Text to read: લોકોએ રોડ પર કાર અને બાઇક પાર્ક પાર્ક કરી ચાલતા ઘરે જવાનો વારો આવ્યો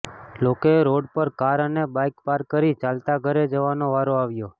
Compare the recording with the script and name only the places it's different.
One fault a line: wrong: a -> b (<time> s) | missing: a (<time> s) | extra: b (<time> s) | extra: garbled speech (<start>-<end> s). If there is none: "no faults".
missing: પાર્ક (2.5 s)